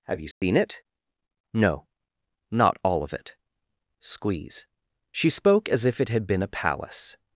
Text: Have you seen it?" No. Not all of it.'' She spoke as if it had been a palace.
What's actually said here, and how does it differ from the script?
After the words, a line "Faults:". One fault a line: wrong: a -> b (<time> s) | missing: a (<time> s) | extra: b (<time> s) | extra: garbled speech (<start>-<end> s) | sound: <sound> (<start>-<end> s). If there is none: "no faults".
Have you seen it?" No. Not all of it.'' squeeze She spoke as if it had been a palace.
Faults:
sound: dropout (0.3-0.4 s)
extra: squeeze (4.0 s)